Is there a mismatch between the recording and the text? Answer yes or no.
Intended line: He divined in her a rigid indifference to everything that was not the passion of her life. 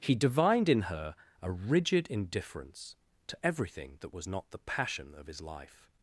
yes